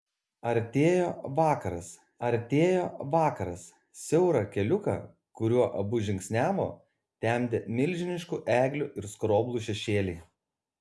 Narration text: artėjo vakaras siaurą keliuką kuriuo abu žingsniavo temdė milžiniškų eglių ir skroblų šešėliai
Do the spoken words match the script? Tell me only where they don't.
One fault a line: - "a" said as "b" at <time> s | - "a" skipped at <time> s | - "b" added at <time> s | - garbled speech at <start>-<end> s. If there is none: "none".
- "artėjo vakaras" added at 2.3 s